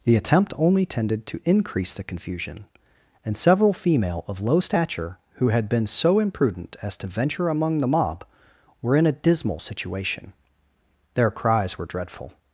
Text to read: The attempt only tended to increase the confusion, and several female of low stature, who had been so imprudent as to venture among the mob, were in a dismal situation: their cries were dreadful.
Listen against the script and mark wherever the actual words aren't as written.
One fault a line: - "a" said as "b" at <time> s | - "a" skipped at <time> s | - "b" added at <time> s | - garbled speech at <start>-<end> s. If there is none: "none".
none